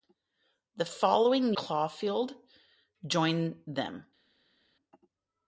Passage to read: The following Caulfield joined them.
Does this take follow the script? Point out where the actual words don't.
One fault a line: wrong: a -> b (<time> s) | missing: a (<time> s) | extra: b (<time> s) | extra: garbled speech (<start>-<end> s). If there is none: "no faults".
no faults